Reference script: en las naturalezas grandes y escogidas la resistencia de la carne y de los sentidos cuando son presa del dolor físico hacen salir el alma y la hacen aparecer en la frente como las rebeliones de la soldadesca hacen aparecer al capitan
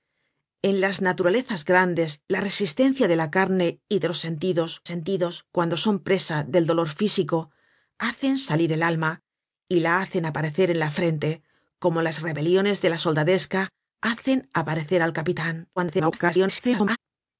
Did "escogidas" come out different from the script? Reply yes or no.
yes